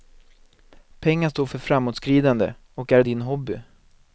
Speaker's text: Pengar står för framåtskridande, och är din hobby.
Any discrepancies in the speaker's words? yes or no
no